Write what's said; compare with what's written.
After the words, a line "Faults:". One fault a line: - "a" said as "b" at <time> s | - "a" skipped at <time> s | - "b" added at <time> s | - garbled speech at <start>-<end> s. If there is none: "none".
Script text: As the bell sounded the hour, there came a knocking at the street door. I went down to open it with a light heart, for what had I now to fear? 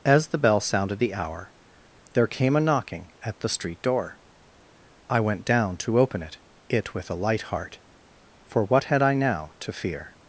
As the bell sounded the hour, there came a knocking at the street door. I went down to open it it with a light heart, for what had I now to fear?
Faults:
- "it" added at 6.7 s